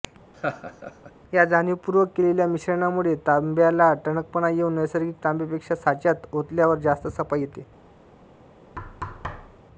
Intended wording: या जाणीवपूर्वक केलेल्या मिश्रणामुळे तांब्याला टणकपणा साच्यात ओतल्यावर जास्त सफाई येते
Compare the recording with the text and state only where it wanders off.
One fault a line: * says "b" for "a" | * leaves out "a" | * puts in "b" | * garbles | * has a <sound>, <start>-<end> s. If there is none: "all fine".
* has a laugh, 0.3-1.1 s
* puts in "येऊन नैसर्गिक तांब्यापेक्षा"
* has a thud, 8.8-9.6 s